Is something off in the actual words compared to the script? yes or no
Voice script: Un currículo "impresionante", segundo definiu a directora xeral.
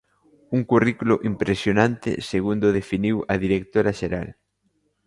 no